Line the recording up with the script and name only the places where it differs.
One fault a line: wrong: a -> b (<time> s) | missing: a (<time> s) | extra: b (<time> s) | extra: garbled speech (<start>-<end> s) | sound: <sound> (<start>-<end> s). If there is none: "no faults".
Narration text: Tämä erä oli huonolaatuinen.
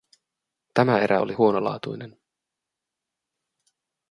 no faults